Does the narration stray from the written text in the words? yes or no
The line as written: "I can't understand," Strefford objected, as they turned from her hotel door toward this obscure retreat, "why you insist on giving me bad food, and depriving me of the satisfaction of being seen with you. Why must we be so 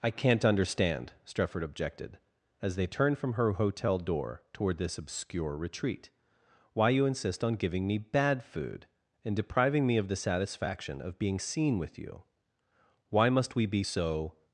no